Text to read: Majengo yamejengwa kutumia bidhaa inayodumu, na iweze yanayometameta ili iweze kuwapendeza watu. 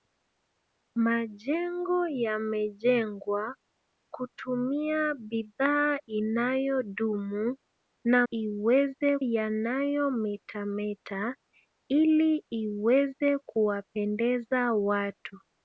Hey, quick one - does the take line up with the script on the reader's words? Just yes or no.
yes